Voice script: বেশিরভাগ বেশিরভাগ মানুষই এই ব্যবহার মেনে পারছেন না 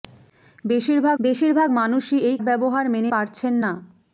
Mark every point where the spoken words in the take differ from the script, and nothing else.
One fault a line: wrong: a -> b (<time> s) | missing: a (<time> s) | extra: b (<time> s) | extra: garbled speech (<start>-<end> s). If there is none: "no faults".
no faults